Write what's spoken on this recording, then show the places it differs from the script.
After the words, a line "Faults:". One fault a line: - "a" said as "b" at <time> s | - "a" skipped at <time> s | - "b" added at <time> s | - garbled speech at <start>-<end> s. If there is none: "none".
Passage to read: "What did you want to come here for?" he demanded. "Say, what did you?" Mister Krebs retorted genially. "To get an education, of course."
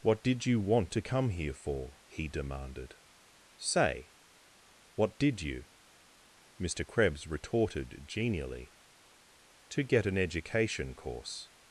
"What did you want to come here for?" he demanded. "Say, what did you?" Mister Krebs retorted genially. "To get an education, course."
Faults:
- "of" skipped at 10.9 s